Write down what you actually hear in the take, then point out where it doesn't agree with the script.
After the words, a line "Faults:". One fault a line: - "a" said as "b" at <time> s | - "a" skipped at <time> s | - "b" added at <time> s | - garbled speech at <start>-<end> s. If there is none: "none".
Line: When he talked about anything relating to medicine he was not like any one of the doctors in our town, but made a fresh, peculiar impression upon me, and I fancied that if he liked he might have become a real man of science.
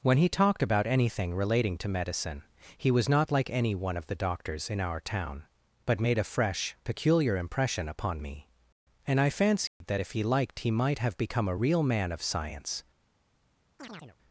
When he talked about anything relating to medicine he was not like any one of the doctors in our town, but made a fresh, peculiar impression upon me, and I fancied that if he liked he might have become a real man of science.
Faults:
none